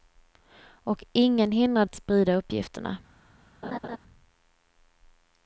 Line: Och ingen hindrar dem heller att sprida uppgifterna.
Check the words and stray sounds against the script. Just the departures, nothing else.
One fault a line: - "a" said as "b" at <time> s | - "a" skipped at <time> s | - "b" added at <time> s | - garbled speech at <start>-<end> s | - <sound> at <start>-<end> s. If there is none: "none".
- "dem heller" skipped at 1.9 s
- laugh at 3.6-4.0 s